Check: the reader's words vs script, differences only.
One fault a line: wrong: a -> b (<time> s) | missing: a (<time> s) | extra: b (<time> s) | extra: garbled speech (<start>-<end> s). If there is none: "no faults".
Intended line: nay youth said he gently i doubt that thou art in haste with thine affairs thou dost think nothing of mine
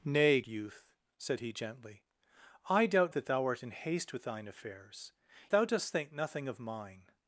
no faults